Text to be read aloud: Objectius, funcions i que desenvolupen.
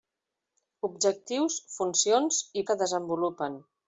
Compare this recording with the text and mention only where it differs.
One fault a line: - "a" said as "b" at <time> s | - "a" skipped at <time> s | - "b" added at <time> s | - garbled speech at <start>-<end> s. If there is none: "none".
none